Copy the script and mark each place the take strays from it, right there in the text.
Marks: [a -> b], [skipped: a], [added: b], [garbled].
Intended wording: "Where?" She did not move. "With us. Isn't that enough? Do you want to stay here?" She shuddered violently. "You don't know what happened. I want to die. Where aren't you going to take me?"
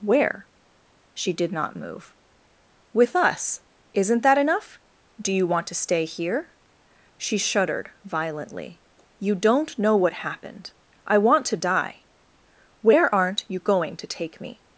"Where?" She did not move. "With us. Isn't that enough? Do you want to stay here?" She shuddered violently. "You don't know what happened. I want to die. Where aren't you going to take me?"